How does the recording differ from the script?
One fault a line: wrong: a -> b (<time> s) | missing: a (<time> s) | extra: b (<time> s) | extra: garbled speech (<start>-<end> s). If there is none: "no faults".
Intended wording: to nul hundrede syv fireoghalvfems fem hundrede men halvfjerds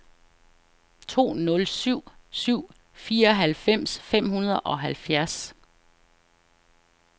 wrong: hundrede -> syv (1.7 s)
wrong: men -> og (4.6 s)